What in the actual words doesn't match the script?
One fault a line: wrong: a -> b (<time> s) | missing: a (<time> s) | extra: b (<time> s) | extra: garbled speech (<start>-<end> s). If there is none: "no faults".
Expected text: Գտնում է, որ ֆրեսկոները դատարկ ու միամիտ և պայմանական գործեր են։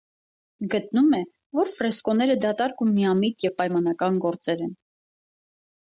no faults